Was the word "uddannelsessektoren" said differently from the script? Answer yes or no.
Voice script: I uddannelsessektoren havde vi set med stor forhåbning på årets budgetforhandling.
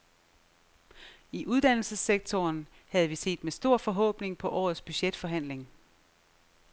no